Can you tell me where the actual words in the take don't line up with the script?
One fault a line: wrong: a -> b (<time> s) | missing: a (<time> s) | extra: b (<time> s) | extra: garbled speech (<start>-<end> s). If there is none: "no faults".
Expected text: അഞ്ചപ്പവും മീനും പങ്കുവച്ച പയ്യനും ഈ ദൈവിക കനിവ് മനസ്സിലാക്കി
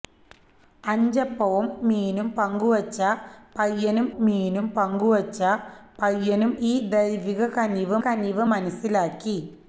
extra: മീനും പങ്കുവച്ച പയ്യനും (4.2 s)
extra: കനിവ് (8.1 s)